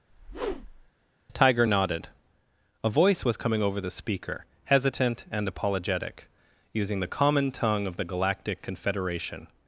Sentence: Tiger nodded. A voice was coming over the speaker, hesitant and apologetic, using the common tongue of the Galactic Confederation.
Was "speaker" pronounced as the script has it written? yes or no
yes